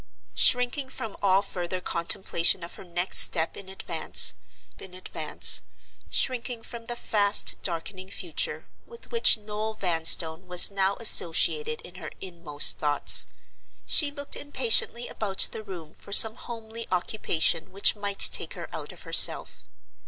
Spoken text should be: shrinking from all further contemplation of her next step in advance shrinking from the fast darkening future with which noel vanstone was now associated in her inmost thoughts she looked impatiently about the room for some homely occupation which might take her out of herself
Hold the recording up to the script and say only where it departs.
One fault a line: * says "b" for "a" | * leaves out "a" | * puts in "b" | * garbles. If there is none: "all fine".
* puts in "in advance"